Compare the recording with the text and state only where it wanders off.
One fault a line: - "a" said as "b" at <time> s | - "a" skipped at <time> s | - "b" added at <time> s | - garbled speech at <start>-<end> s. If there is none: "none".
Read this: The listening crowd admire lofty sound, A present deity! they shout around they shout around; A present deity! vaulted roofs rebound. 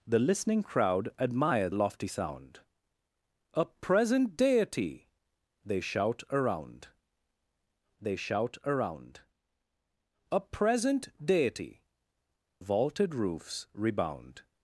none